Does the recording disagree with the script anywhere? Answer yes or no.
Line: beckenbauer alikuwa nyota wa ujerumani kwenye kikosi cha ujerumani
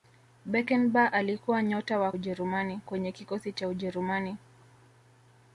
no